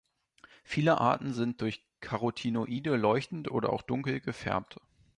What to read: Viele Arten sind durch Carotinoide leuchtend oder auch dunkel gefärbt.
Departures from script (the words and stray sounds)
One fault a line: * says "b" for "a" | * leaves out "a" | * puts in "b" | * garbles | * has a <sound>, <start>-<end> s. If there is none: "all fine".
all fine